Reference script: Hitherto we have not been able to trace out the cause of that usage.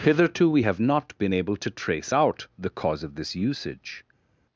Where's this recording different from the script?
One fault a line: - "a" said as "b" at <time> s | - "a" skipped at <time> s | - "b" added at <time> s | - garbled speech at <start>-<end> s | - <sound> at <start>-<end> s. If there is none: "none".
- "that" said as "this" at 3.2 s